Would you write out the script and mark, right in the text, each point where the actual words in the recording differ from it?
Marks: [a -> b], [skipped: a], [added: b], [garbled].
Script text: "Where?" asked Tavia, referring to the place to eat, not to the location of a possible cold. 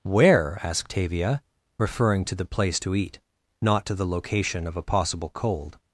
"Where?" asked Tavia, referring to the place to eat, not to the location of a possible cold.